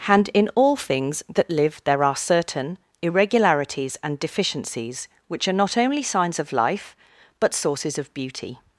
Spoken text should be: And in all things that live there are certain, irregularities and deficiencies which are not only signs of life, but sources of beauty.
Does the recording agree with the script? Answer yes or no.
yes